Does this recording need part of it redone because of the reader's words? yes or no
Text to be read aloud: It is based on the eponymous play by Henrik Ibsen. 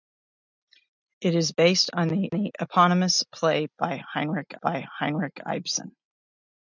yes